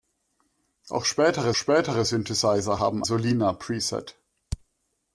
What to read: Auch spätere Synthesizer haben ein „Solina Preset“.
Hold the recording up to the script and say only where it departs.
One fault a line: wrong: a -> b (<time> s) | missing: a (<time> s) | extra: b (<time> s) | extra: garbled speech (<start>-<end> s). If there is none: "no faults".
extra: spätere (1.5 s)
missing: ein (3.0 s)